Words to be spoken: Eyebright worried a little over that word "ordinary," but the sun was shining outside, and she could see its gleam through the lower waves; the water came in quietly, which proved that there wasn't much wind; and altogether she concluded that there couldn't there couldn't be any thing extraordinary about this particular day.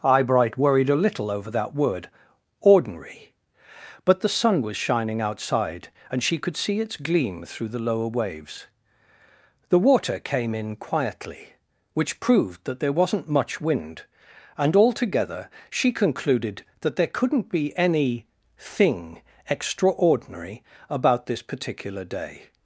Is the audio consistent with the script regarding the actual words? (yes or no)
no